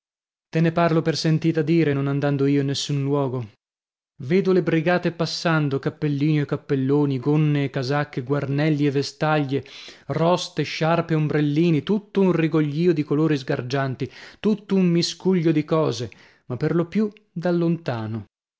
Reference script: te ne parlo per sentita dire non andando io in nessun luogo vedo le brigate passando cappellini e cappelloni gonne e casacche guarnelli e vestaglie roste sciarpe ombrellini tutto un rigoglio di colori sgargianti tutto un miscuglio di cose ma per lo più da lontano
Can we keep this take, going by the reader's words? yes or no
yes